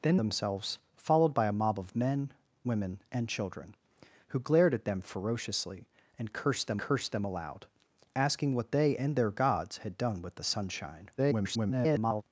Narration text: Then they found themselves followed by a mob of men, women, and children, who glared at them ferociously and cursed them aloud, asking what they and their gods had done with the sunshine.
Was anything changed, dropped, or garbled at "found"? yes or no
yes